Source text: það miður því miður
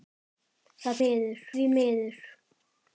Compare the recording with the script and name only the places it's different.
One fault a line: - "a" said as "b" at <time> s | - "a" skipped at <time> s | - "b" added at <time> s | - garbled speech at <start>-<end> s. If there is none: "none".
none